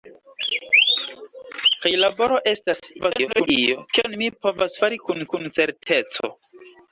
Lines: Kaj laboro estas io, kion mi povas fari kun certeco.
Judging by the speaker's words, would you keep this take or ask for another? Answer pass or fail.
fail